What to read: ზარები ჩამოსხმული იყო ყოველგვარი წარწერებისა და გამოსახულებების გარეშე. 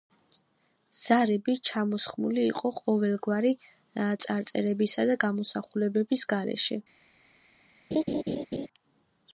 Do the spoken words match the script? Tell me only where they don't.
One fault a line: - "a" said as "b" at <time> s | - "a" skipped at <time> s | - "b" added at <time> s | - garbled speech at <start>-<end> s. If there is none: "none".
none